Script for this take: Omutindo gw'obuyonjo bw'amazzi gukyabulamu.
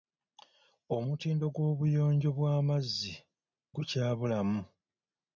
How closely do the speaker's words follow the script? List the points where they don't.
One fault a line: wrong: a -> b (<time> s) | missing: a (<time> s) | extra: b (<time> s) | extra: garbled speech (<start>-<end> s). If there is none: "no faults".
no faults